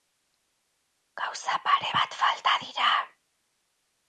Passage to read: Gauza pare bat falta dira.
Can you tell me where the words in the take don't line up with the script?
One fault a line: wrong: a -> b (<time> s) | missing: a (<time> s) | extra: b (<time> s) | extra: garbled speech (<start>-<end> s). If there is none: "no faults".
no faults